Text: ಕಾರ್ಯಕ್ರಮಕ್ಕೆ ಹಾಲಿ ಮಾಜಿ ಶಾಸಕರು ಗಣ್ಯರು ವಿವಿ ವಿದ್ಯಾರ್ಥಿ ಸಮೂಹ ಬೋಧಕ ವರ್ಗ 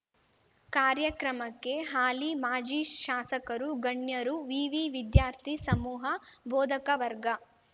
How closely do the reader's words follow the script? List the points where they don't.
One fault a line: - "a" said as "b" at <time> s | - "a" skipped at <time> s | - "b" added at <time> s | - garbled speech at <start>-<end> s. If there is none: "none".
none